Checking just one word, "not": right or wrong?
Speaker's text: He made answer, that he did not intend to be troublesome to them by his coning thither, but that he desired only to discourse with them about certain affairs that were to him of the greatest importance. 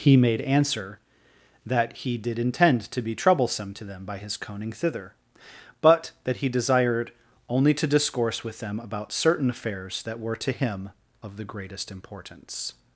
wrong